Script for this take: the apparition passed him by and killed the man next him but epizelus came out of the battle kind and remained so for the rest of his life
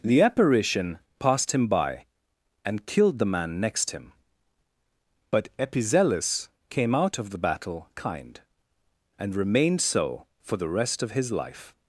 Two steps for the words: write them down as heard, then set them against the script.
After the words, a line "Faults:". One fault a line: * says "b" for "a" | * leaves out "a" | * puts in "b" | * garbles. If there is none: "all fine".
the apparition passed him by and killed the man next him but epizelus came out of the battle kind and remained so for the rest of his life
Faults:
all fine